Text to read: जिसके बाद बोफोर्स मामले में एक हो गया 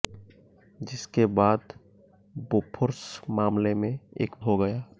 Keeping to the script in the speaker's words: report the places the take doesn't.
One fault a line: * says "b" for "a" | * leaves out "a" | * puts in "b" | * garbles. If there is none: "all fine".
all fine